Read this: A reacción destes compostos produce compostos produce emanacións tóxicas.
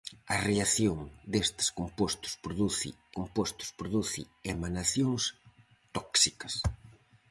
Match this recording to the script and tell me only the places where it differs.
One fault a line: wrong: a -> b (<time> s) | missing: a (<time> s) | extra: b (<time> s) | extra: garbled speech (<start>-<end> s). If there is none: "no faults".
no faults